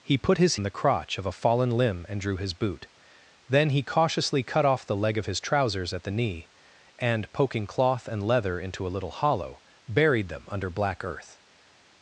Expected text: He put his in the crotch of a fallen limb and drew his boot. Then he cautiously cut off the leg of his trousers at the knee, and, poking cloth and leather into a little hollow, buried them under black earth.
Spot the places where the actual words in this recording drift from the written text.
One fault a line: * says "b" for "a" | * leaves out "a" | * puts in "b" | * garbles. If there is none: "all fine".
all fine